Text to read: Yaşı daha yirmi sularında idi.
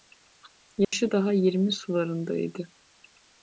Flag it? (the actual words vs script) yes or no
no